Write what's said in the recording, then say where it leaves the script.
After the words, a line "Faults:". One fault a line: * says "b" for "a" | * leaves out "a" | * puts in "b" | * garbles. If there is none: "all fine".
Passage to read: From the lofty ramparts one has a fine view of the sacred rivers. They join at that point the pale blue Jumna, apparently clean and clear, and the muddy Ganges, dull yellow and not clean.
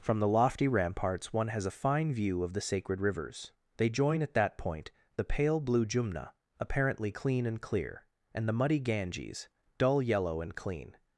From the lofty ramparts one has a fine view of the sacred rivers. They join at that point the pale blue Jumna, apparently clean and clear, and the muddy Ganges, dull yellow and clean.
Faults:
* leaves out "not"